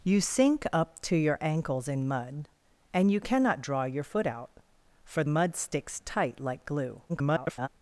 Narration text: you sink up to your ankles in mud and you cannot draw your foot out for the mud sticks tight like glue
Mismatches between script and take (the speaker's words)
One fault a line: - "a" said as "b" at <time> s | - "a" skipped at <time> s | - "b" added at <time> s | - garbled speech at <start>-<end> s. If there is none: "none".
- "the" skipped at 5.2 s
- garbled speech at 7.1-7.7 s